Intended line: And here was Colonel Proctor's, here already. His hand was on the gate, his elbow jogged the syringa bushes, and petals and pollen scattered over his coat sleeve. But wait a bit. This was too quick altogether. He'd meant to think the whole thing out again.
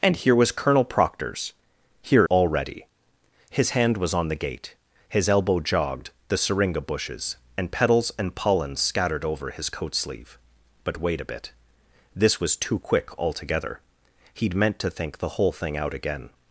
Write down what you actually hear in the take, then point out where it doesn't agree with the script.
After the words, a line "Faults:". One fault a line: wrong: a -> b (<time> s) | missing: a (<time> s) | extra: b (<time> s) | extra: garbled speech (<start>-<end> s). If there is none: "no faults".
And here was Colonel Proctor's, here already. His hand was on the gate, his elbow jogged the syringa bushes, and petals and pollen scattered over his coat sleeve. But wait a bit. This was too quick altogether. He'd meant to think the whole thing out again.
Faults:
no faults